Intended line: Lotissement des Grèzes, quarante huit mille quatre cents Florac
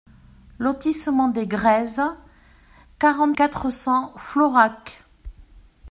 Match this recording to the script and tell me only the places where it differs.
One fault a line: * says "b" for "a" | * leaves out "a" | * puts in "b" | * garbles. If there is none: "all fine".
* leaves out "huit mille"